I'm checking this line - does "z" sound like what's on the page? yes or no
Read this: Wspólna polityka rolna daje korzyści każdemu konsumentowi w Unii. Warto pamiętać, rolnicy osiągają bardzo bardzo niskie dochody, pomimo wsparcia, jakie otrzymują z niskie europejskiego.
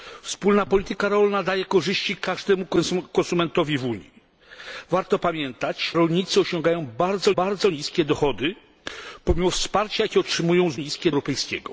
yes